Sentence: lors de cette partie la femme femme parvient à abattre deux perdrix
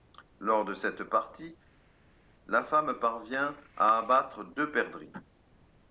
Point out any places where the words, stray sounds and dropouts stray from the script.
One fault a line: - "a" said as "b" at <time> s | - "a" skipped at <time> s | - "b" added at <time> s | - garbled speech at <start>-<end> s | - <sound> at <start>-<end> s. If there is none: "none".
- "femme" skipped at 3.0 s